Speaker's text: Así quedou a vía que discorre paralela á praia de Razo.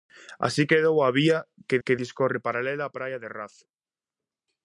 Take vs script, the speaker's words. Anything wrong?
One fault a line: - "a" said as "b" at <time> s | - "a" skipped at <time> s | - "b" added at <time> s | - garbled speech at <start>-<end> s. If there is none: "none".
- "que" added at 1.8 s